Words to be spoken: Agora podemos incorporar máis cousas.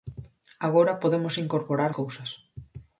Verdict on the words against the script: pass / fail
fail